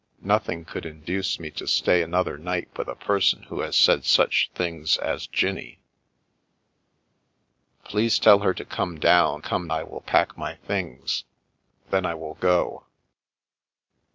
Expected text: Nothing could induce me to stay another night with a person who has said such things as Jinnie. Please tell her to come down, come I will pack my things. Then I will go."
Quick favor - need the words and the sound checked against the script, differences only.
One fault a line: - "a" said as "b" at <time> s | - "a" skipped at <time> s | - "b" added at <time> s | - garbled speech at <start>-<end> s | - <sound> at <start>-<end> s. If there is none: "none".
none